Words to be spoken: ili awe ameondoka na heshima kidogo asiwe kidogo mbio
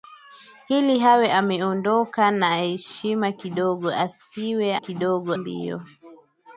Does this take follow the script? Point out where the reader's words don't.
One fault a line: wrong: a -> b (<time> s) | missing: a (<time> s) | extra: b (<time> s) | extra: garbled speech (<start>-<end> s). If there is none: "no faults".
no faults